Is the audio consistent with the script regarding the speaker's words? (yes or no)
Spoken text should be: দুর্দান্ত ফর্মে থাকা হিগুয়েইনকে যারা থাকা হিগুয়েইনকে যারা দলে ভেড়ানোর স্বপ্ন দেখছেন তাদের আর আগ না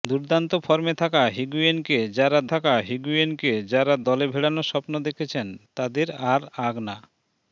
yes